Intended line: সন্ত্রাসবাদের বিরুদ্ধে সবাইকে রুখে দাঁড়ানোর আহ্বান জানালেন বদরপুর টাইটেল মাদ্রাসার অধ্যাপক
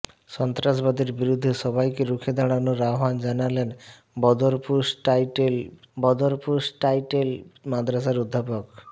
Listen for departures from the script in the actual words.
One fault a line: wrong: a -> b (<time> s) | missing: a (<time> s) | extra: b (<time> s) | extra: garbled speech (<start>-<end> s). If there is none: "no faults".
extra: বদরপুর টাইটেল (6.0 s)